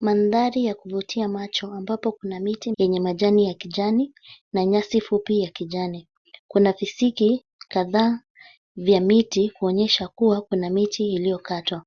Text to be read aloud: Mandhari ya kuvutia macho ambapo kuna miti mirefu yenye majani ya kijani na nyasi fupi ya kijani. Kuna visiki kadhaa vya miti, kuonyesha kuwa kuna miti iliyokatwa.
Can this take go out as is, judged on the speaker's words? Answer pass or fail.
fail